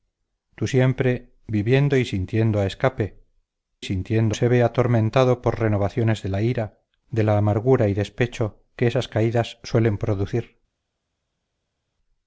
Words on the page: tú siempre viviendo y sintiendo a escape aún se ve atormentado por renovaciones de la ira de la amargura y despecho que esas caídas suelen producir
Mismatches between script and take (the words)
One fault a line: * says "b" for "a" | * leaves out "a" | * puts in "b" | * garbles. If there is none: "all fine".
* says "sintiendo" for "aún"